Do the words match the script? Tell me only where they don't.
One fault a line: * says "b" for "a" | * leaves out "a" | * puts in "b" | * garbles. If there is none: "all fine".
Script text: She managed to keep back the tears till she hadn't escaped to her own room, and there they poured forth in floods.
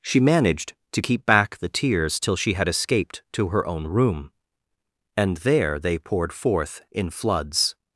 * says "had" for "hadn't"